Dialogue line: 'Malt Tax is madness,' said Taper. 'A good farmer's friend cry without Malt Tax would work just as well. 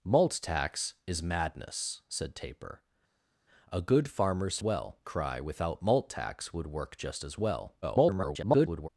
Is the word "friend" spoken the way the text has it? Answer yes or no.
no